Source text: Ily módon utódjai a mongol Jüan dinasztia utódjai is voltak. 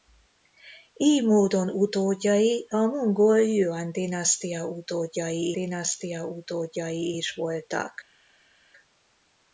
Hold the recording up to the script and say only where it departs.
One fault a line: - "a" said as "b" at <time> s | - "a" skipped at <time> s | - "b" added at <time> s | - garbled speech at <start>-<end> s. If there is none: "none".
- "dinasztia utódjai" added at 5.5 s